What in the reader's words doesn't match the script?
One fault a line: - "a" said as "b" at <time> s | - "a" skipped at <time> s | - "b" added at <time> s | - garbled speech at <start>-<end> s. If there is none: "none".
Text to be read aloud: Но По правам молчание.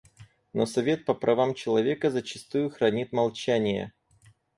- "Совет" added at 0.7 s
- "человека зачастую хранит" added at 1.5 s